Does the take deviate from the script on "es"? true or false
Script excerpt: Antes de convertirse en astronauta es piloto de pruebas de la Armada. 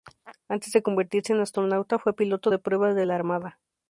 true